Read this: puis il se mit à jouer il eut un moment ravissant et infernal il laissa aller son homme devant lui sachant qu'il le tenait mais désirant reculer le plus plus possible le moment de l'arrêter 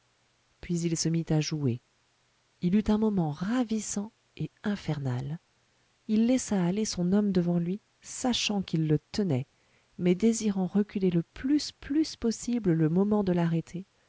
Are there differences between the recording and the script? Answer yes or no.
no